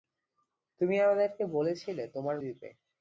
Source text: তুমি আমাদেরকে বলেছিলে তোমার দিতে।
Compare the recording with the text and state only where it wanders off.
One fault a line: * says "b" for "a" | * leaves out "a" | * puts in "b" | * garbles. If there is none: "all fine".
all fine